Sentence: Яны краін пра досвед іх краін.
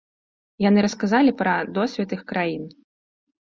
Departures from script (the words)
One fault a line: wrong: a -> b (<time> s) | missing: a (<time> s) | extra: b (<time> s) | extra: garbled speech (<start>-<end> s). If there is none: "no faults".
wrong: краін -> расказалі (0.9 s)